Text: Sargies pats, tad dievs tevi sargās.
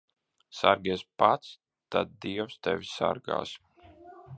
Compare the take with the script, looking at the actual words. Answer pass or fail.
pass